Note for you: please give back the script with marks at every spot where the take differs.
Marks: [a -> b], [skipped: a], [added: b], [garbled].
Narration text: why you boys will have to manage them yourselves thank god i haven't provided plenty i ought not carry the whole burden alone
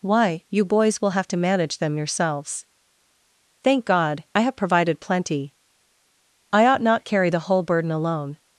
why you boys will have to manage them yourselves thank god i [haven't -> have] provided plenty i ought not carry the whole burden alone